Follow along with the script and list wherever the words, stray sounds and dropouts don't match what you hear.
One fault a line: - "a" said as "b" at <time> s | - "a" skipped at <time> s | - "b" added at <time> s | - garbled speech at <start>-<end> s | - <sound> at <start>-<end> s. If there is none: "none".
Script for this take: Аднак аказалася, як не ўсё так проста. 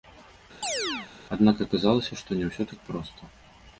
- chirp at 0.6-1.1 s
- "як" said as "што" at 2.2 s